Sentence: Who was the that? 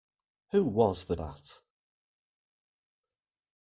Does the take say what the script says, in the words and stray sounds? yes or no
yes